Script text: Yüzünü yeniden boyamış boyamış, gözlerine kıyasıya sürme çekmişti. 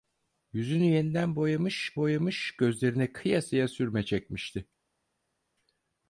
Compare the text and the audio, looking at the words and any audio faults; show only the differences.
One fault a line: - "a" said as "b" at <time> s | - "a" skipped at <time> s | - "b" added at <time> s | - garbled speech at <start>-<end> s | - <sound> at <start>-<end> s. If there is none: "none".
none